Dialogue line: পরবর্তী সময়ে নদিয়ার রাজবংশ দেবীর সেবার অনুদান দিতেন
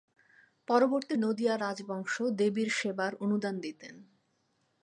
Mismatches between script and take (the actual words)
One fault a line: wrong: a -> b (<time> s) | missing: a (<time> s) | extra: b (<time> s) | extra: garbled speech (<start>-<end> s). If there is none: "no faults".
missing: সময়ে (1.1 s)